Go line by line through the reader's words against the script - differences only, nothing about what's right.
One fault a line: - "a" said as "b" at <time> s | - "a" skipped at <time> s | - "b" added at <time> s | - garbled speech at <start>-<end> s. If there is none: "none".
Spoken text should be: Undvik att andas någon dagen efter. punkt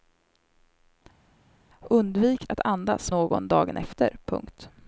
none